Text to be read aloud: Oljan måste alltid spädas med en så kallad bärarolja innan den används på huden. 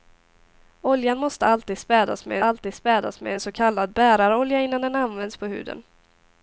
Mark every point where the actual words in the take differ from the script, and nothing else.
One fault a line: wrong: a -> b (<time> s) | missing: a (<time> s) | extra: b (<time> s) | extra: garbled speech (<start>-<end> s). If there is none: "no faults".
extra: alltid spädas med (2.4 s)